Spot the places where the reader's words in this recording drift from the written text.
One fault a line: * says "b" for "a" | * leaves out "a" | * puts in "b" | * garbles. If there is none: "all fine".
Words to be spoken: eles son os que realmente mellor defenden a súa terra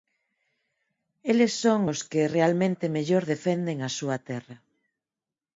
all fine